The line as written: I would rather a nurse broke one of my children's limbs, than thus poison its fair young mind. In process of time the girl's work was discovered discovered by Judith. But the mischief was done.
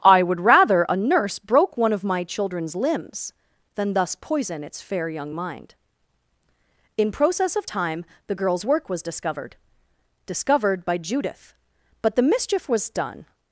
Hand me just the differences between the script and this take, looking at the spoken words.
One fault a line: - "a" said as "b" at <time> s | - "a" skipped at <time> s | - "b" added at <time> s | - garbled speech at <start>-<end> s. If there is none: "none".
none